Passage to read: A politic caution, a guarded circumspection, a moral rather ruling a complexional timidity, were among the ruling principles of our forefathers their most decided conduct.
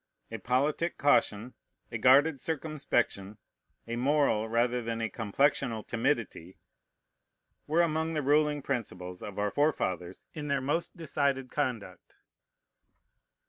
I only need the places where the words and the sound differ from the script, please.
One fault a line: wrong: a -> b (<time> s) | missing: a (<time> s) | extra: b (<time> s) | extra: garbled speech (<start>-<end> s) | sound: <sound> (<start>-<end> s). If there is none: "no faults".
wrong: ruling -> than (4.8 s)
extra: in (10.3 s)